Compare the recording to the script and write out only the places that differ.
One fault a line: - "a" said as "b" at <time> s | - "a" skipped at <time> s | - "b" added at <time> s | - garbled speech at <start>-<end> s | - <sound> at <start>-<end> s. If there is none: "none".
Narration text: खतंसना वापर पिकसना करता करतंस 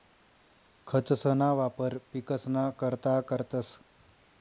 none